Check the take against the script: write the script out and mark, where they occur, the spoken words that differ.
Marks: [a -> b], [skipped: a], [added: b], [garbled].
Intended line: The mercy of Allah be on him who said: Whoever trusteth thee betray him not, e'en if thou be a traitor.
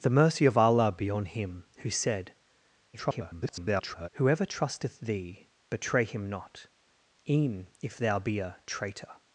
The mercy of Allah be on him who said: [garbled] Whoever trusteth thee betray him not, e'en if thou be a traitor.